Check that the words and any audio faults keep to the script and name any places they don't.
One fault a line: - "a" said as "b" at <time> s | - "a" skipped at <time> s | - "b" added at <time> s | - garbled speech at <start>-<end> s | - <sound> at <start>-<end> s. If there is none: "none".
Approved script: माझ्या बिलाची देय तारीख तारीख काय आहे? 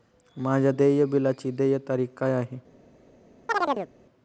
- "देय" added at 0.7 s
- "तारीख" skipped at 2.1 s
- chirp at 3.5-3.9 s